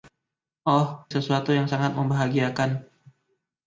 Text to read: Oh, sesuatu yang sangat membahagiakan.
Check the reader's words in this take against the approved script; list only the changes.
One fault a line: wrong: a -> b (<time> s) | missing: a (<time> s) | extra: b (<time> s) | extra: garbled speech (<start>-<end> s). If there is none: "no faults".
no faults